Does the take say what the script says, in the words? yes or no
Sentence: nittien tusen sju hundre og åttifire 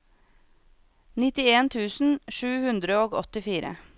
yes